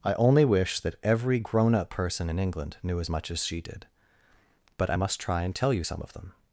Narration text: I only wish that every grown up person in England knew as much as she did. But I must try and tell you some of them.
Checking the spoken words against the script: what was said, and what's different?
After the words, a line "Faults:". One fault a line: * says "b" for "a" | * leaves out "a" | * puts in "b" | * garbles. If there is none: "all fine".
I only wish that every grown up person in England knew as much as she did. But I must try and tell you some of them.
Faults:
all fine